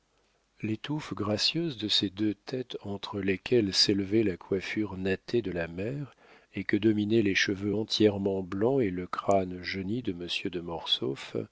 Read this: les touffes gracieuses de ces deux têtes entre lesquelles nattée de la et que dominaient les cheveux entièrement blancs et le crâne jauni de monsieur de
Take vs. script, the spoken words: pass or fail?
fail